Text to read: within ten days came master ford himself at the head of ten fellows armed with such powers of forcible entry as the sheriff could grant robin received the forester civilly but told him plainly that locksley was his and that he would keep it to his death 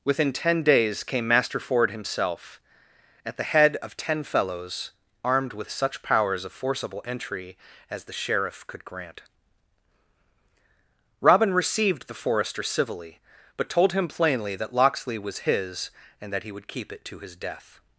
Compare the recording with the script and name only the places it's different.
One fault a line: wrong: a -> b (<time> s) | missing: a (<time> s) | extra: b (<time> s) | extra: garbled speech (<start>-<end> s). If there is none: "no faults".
no faults